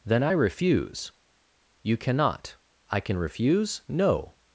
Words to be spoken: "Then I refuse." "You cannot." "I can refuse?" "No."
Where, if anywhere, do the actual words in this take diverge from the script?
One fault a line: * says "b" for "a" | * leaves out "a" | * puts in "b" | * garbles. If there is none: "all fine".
all fine